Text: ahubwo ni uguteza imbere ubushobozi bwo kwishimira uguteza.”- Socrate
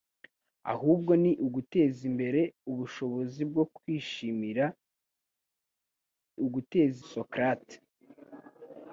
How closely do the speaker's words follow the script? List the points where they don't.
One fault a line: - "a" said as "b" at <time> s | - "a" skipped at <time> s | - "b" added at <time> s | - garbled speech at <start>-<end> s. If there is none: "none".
none